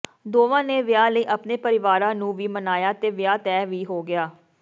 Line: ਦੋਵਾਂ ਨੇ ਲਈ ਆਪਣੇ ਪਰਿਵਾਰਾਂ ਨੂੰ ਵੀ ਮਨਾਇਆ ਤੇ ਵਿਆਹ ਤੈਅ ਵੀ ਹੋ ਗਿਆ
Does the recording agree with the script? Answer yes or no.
no